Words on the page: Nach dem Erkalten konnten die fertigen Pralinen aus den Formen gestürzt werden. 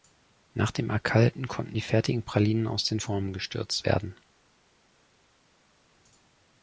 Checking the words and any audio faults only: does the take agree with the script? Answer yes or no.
yes